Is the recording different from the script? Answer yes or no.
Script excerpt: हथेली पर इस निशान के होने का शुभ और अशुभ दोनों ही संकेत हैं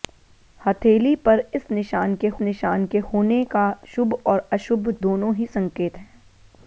yes